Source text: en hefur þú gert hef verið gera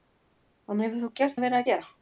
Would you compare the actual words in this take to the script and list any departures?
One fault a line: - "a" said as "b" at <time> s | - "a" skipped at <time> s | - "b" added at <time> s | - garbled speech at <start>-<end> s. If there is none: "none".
none